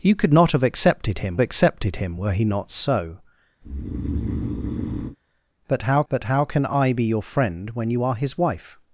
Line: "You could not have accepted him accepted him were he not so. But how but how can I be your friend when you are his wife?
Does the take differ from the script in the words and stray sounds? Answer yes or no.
yes